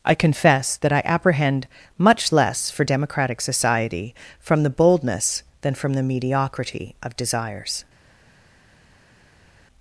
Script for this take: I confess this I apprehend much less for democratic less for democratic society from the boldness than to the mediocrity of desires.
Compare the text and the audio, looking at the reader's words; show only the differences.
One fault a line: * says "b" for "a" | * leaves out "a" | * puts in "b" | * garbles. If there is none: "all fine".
* says "that" for "this"
* leaves out "less for democratic"
* says "from" for "to"